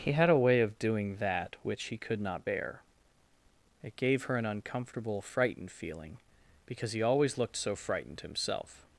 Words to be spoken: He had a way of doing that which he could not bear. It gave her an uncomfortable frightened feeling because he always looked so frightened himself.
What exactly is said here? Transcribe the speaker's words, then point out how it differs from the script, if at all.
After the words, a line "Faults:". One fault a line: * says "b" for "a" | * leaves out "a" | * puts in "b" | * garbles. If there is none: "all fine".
He had a way of doing that which he could not bear. It gave her an uncomfortable frightened feeling because he always looked so frightened himself.
Faults:
all fine